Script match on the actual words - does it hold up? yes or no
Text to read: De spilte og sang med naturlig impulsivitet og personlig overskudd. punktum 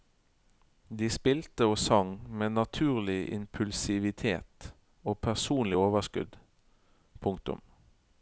yes